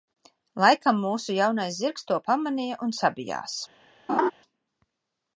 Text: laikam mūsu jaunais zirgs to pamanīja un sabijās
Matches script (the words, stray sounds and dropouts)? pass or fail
fail